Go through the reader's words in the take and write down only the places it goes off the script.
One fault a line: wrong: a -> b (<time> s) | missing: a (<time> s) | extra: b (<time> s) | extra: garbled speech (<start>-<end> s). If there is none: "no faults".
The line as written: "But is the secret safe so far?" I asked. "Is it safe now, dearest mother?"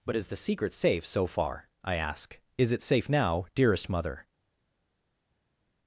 wrong: asked -> ask (1.9 s)